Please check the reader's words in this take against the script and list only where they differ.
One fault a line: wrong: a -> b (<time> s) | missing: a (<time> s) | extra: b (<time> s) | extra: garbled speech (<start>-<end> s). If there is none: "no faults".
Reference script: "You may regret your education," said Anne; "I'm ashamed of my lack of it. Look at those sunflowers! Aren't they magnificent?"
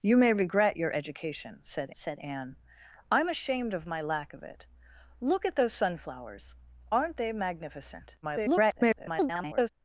extra: said (1.9 s)
extra: garbled speech (8.2-9.7 s)